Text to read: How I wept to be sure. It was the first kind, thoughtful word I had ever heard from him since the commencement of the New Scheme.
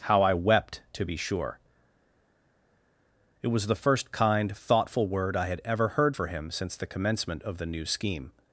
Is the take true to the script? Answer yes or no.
no